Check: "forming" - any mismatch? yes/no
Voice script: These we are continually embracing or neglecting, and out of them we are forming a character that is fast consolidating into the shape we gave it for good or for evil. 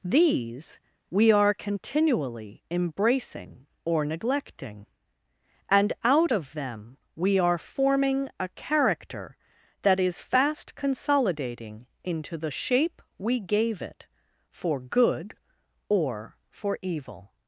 no